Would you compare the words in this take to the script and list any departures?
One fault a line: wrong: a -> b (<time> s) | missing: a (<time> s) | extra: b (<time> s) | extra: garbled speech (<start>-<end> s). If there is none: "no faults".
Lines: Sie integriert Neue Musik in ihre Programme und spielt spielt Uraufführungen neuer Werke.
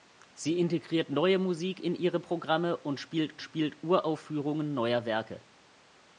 no faults